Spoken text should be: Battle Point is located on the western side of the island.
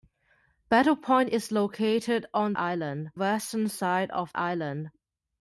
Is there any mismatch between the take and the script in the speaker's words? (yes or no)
yes